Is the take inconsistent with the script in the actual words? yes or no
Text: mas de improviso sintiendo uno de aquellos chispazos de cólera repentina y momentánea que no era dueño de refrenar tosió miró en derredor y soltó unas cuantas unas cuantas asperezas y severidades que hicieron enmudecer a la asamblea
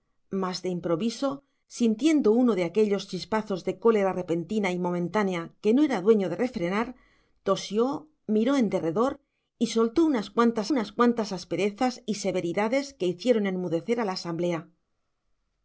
no